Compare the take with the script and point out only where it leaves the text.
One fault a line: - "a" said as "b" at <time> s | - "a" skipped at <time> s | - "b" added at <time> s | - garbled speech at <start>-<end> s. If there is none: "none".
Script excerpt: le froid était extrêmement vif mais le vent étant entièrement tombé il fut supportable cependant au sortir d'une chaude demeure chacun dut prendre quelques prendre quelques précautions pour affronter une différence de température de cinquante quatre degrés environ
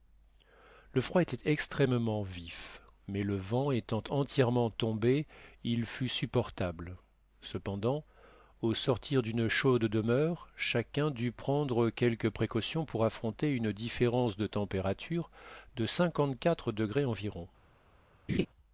- "prendre quelques" skipped at 12.3 s